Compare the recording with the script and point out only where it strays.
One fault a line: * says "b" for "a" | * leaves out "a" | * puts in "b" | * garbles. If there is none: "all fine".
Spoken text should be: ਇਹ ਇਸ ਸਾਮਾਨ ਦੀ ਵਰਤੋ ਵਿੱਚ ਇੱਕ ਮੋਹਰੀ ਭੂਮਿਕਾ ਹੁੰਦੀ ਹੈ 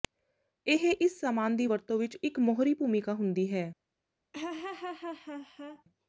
all fine